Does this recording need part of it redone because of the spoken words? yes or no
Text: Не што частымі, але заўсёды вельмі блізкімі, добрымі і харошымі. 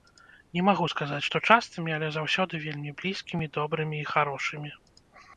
yes